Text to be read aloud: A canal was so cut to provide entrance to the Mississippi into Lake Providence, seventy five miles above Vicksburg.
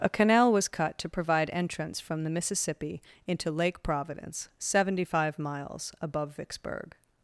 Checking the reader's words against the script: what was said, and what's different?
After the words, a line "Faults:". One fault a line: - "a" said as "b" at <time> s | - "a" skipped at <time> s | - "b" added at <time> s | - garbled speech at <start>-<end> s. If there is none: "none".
A canal was cut to provide entrance from the Mississippi into Lake Providence, seventy five miles above Vicksburg.
Faults:
- "so" skipped at 0.7 s
- "to" said as "from" at 2.0 s